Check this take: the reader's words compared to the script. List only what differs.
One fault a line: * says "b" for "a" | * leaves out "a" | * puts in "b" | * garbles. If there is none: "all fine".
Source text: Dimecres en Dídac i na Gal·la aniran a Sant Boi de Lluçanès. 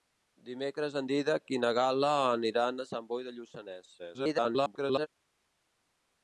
* garbles